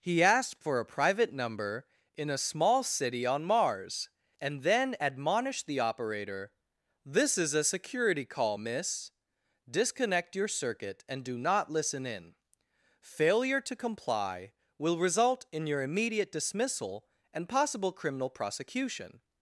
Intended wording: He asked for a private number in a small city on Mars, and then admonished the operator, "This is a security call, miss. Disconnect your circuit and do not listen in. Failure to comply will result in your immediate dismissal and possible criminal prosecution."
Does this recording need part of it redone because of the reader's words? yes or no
no